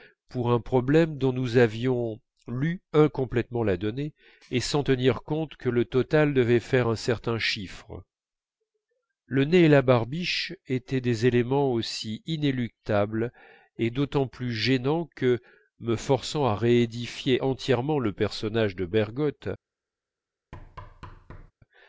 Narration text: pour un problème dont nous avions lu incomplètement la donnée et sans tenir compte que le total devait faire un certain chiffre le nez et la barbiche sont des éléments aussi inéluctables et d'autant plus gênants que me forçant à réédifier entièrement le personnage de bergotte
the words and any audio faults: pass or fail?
fail